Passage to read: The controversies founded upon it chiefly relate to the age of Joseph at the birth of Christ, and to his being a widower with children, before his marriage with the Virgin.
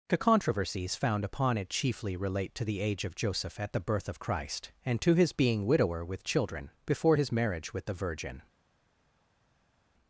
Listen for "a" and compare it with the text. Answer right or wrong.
wrong